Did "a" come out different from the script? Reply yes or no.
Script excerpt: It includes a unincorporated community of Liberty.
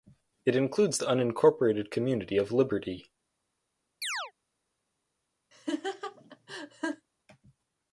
yes